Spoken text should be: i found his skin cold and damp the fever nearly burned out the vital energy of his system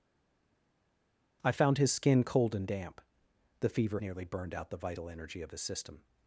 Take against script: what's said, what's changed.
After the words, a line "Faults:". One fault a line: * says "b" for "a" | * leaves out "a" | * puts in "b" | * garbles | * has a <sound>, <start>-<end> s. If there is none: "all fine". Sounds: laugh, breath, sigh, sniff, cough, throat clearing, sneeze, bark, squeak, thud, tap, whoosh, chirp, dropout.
i found his skin cold and damp the fever nearly burned out the vital energy of his system
Faults:
all fine